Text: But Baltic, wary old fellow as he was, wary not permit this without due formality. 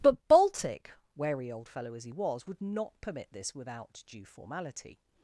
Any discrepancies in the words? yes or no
yes